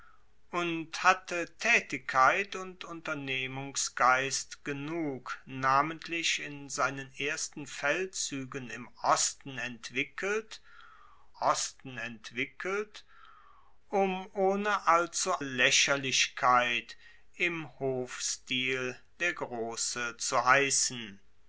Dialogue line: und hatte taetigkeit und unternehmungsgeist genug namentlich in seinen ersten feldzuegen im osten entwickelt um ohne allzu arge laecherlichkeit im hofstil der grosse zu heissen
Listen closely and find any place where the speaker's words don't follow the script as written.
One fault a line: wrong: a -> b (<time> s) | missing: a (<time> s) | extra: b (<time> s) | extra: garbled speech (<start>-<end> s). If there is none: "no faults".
extra: osten entwickelt (11.4 s)
missing: arge (15.3 s)